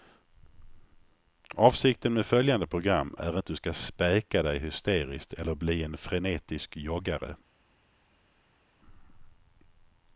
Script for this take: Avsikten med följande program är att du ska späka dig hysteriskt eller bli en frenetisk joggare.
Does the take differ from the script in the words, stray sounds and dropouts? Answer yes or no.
no